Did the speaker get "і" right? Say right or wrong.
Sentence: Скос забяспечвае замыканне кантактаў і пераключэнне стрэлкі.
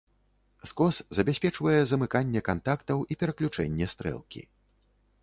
right